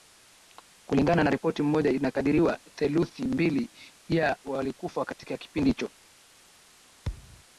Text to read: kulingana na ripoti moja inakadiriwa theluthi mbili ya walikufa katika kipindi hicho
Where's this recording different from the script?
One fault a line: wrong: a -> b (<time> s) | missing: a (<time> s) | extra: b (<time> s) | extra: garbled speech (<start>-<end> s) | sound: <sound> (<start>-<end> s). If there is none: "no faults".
sound: thud (7.0-7.4 s)